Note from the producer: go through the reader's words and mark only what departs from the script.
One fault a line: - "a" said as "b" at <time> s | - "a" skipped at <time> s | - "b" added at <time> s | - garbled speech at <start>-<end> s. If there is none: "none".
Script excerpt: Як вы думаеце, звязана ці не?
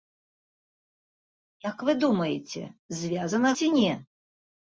none